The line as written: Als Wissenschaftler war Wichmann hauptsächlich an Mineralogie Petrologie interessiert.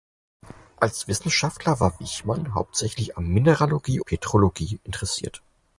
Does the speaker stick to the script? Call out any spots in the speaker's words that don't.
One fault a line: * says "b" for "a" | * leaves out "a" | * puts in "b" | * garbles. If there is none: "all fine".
all fine